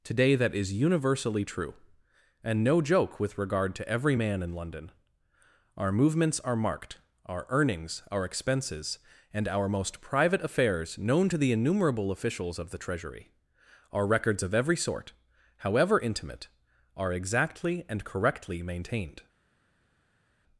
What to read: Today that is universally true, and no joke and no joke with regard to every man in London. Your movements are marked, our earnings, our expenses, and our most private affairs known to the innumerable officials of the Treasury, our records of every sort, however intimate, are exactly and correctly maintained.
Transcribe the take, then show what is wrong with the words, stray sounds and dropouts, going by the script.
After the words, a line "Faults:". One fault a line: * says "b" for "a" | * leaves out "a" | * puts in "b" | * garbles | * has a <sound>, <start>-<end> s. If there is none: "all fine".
Today that is universally true, and no joke with regard to every man in London. Our movements are marked, our earnings, our expenses, and our most private affairs known to the innumerable officials of the Treasury, our records of every sort, however intimate, are exactly and correctly maintained.
Faults:
* leaves out "and no joke"
* says "Our" for "Your"